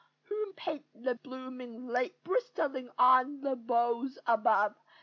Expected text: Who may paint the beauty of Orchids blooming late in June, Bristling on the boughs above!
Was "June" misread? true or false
true